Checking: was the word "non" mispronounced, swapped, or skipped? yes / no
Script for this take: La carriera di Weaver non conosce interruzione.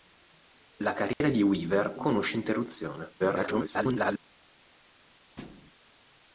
yes